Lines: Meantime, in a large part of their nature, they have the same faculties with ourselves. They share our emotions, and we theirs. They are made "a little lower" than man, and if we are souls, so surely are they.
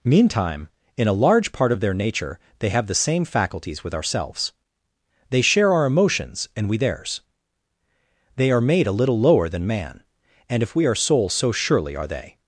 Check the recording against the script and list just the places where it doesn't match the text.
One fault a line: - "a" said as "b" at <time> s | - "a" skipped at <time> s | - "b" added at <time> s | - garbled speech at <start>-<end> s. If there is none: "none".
none